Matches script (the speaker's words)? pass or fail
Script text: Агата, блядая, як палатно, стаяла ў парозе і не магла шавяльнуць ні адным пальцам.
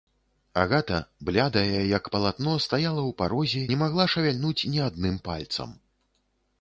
fail